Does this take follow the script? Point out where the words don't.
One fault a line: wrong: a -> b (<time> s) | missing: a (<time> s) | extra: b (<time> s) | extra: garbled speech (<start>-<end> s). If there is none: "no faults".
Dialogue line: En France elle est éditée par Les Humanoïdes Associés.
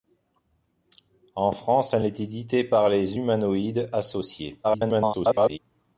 extra: garbled speech (4.6-5.6 s)